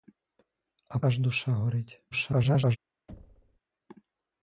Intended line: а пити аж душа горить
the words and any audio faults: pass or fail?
fail